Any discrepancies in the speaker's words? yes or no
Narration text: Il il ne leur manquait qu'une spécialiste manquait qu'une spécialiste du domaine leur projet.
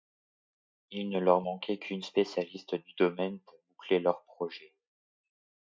yes